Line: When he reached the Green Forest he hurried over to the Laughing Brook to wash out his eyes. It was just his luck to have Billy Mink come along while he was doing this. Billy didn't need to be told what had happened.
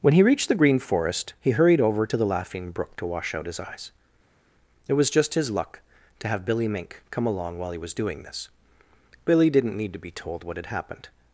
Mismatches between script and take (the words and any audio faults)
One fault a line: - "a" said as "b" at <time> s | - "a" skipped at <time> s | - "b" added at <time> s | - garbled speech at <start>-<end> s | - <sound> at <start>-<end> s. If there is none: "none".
none